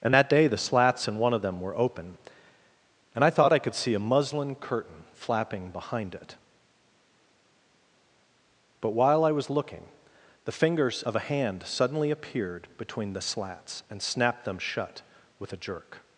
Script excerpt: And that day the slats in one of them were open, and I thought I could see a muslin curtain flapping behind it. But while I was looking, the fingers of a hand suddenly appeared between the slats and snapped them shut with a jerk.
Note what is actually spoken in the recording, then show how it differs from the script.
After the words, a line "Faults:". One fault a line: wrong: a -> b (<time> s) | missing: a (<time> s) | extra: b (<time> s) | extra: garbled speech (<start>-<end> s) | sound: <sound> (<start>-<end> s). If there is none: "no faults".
And that day the slats in one of them were open, and I thought I could see a muslin curtain flapping behind it. But while I was looking, the fingers of a hand suddenly appeared between the slats and snapped them shut with a jerk.
Faults:
no faults